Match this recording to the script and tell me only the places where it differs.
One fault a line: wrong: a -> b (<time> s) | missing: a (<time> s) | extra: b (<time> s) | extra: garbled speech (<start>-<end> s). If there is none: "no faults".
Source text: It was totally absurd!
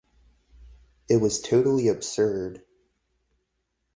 no faults